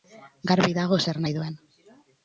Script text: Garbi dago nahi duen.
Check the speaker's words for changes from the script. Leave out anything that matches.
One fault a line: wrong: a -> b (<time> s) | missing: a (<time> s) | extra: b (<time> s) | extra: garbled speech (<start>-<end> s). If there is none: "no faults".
extra: zer (1.1 s)